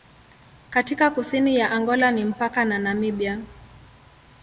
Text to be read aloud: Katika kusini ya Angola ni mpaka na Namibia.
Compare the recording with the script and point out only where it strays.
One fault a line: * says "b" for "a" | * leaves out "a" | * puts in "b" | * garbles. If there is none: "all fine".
all fine